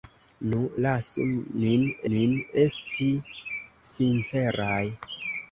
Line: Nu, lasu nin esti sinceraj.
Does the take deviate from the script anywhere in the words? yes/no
yes